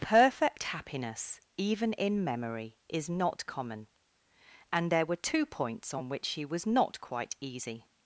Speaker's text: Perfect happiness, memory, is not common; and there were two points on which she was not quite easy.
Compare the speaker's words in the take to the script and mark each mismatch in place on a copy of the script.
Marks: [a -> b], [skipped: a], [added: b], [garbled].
Perfect happiness, [added: even in] memory, is not common; and there were two points on which she was not quite easy.